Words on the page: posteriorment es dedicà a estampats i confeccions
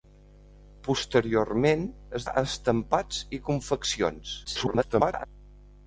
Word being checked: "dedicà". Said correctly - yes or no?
no